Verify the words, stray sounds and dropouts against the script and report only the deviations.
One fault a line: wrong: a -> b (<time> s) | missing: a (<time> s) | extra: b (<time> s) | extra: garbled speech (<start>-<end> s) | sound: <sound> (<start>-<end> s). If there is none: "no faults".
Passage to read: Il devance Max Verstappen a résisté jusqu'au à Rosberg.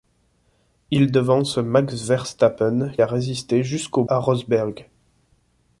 no faults